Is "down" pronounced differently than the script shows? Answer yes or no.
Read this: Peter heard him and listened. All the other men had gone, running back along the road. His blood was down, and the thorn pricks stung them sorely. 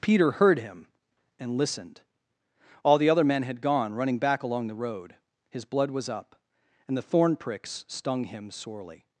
yes